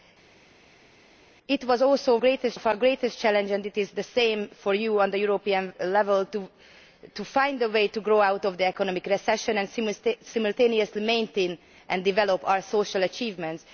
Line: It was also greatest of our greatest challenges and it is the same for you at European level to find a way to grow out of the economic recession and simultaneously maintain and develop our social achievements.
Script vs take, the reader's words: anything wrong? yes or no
no